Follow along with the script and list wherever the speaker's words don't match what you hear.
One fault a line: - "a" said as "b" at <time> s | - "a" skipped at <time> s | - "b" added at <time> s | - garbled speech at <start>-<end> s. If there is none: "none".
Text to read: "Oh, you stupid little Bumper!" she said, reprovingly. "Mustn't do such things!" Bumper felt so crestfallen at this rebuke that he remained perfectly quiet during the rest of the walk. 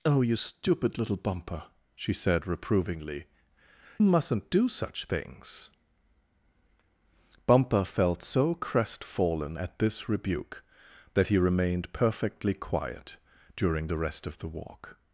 none